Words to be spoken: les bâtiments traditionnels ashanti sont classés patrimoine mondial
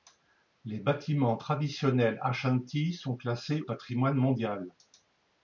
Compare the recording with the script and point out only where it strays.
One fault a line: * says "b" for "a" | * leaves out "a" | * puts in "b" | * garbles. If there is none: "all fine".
all fine